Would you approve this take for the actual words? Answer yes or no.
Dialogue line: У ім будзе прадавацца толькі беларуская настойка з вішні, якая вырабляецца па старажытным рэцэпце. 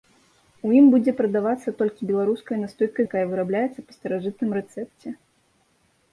no